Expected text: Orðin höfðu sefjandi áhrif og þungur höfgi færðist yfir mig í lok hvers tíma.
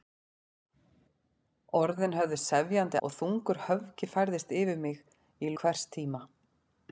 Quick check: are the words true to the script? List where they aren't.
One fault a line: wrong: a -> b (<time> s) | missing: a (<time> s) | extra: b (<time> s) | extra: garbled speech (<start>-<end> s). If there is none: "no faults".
missing: áhrif (3.0 s)
missing: lok (5.6 s)